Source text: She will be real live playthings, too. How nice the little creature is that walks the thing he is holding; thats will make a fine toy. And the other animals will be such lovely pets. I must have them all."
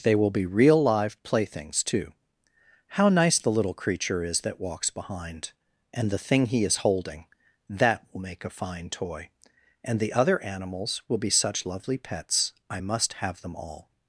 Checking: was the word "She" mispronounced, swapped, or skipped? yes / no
yes